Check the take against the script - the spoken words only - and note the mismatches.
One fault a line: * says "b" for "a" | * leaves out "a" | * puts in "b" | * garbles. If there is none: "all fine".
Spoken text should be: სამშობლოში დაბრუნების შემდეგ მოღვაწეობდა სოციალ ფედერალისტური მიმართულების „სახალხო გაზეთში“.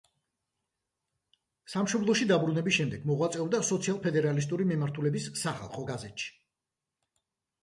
all fine